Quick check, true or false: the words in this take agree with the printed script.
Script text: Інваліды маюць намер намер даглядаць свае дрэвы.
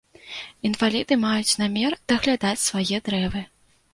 false